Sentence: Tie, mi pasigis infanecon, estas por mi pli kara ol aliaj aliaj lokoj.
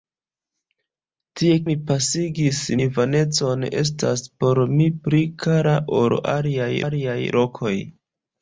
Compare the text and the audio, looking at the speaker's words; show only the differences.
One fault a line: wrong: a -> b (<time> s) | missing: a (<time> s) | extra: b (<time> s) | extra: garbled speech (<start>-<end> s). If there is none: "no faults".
no faults